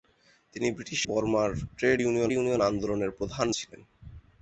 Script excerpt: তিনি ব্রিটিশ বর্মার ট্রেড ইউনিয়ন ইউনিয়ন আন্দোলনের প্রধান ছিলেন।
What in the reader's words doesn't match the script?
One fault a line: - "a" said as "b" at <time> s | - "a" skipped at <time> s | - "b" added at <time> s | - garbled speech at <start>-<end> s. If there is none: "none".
none